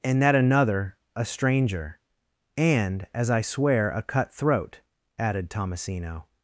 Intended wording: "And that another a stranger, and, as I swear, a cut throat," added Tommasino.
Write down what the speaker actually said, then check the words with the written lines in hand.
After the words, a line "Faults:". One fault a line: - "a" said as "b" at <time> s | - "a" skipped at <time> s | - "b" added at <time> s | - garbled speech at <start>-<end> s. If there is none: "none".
"And that another a stranger, and, as I swear, a cut throat," added Tommasino.
Faults:
none